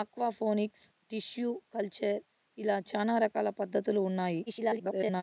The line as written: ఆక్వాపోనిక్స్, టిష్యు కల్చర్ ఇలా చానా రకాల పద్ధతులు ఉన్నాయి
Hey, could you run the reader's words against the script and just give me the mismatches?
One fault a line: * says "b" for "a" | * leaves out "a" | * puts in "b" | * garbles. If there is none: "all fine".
* garbles